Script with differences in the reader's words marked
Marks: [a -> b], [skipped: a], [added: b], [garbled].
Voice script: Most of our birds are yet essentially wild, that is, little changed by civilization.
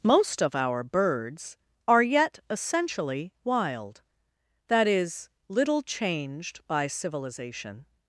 Most of our birds are yet essentially wild, that is, little changed by civilization.